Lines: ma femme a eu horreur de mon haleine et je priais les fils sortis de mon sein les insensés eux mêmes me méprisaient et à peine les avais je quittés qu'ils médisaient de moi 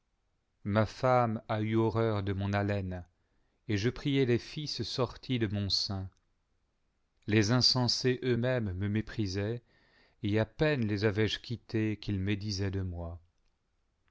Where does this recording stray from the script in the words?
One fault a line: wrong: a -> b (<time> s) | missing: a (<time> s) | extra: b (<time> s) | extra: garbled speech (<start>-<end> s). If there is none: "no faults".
no faults